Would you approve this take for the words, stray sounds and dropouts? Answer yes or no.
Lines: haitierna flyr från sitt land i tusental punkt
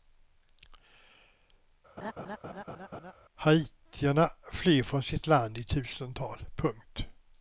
no